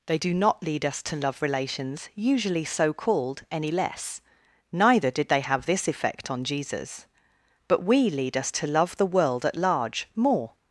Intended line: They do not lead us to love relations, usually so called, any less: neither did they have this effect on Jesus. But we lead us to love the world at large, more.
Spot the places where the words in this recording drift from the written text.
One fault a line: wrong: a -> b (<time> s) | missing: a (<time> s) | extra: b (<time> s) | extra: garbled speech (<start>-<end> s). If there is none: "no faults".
no faults